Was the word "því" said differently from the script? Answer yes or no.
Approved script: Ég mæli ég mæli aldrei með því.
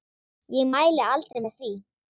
no